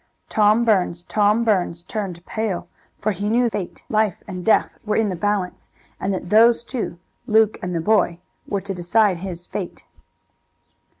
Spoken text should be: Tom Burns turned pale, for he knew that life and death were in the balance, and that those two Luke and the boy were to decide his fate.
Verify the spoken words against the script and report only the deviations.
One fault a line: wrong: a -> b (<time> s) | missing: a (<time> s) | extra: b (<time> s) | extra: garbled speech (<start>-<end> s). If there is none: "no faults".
extra: tom Burns (1.1 s)
wrong: that -> fate (3.5 s)